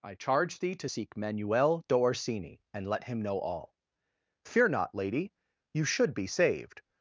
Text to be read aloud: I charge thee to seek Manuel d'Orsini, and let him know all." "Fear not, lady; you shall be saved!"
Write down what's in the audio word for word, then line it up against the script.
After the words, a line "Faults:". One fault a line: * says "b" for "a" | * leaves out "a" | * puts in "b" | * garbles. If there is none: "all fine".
I charge thee to seek Manuel d'Orsini, and let him know all." "Fear not, lady; you should be saved!"
Faults:
* says "should" for "shall"